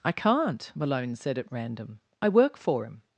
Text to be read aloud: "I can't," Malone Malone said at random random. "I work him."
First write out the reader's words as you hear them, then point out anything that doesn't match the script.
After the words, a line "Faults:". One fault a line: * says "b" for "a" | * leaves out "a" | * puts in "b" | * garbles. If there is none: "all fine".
"I can't," Malone said at random. "I work for him."
Faults:
* leaves out "Malone"
* leaves out "random"
* puts in "for"